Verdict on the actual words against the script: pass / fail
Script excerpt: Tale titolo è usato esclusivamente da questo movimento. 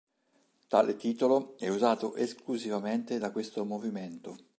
pass